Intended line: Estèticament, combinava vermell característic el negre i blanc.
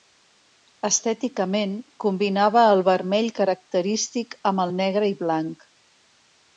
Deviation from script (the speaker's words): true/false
true